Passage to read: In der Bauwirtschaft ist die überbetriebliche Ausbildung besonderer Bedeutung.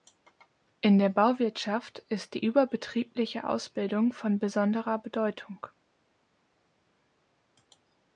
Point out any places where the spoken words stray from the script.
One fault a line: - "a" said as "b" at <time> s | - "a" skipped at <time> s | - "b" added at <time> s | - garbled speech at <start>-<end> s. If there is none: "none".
- "von" added at 4.1 s